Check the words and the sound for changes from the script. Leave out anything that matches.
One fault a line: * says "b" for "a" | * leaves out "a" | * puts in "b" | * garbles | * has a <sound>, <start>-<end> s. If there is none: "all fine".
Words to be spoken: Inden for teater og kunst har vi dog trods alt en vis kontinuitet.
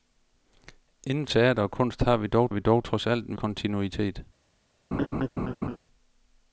* leaves out "for"
* puts in "vi dog"
* leaves out "vis"
* has a laugh, 4.9-5.8 s